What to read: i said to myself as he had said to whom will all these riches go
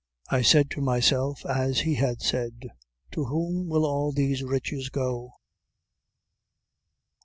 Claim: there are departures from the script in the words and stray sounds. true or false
false